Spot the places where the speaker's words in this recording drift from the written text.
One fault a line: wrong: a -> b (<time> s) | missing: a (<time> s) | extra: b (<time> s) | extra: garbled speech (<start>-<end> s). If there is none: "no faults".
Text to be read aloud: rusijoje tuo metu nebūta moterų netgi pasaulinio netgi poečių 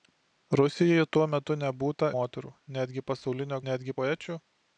no faults